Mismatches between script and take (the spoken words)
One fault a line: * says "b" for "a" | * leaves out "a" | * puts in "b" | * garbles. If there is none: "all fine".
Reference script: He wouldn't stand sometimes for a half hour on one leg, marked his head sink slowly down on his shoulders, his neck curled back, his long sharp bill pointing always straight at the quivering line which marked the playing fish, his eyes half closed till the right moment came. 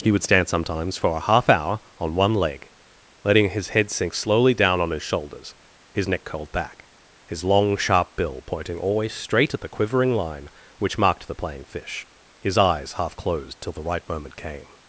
* says "would" for "wouldn't"
* says "letting" for "marked"